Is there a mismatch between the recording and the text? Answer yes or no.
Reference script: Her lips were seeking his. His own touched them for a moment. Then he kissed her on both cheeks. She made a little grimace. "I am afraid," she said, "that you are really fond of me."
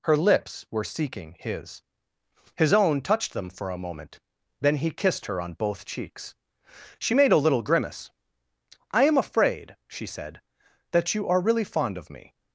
no